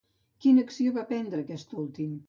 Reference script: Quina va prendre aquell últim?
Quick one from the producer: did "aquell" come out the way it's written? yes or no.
no